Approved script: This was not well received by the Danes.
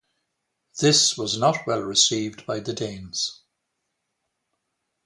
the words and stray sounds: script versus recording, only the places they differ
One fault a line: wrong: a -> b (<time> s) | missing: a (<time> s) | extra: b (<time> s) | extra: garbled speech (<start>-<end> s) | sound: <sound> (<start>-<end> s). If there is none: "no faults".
no faults